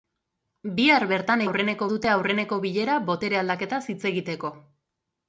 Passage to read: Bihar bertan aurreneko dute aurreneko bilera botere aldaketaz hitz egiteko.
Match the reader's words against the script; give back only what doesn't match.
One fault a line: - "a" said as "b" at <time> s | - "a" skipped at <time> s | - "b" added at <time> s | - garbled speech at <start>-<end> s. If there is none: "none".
none